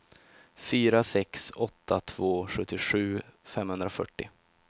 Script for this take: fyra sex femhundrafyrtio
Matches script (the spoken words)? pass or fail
fail